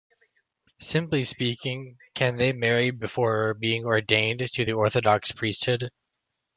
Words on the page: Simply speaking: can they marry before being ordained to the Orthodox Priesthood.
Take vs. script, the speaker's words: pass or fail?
pass